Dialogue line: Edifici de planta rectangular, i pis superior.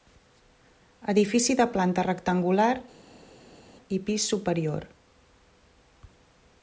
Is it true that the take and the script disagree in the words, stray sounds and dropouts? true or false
false